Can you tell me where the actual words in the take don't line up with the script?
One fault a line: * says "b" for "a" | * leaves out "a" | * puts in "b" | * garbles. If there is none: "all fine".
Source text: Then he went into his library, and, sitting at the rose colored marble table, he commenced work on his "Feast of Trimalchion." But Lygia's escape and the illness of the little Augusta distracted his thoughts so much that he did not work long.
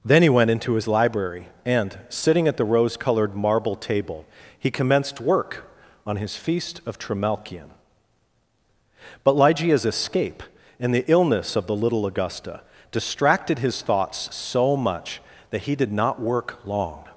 all fine